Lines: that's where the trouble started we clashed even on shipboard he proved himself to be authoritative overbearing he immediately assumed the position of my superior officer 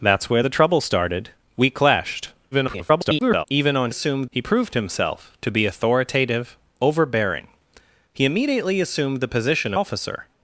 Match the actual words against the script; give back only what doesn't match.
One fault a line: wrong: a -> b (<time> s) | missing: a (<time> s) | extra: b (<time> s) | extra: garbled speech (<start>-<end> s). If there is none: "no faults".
extra: garbled speech (2.5-3.4 s)
wrong: shipboard -> assumed (3.9 s)
missing: of my superior (9.7 s)